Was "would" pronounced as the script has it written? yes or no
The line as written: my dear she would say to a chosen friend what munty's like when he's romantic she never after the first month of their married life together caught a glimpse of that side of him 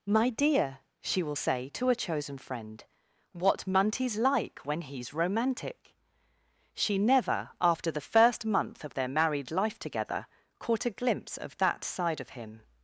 no